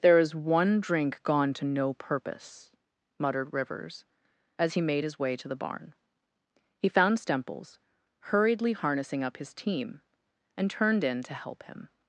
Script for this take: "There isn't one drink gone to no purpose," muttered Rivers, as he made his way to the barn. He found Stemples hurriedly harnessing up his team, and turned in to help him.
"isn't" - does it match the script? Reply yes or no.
no